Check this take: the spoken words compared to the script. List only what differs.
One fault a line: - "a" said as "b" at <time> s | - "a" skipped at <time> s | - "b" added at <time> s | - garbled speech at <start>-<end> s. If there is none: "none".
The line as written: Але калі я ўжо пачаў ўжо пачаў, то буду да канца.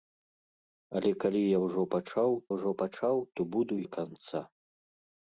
none